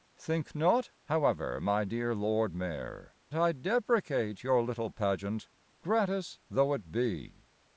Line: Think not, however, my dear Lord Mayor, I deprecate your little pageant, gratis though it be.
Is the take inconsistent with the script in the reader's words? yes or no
no